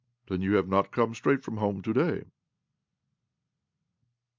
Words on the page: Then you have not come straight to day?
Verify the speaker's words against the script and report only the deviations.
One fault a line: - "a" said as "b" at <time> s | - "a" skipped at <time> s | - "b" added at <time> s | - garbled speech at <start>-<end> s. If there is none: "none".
- "from home" added at 1.4 s